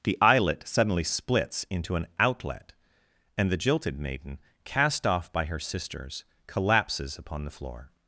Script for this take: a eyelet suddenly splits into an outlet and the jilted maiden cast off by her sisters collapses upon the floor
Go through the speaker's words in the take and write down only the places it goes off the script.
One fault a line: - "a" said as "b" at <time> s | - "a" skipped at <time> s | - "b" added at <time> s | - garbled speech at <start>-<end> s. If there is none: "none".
- "a" said as "the" at 0.0 s